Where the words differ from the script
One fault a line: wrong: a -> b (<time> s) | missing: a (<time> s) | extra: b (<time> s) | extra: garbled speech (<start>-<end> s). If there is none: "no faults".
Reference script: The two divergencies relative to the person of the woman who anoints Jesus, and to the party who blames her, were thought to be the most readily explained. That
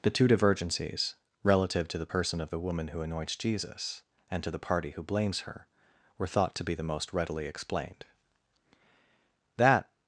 no faults